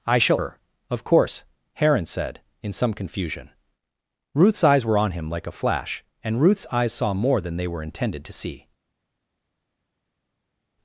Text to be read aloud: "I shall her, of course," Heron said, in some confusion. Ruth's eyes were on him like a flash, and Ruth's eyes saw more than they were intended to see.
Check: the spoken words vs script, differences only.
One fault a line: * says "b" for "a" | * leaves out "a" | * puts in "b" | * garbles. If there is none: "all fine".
all fine